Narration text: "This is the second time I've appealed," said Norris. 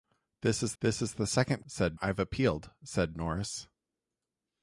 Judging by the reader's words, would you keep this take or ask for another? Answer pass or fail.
fail